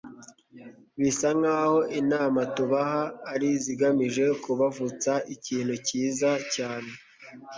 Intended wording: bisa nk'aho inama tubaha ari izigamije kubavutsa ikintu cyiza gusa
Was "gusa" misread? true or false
true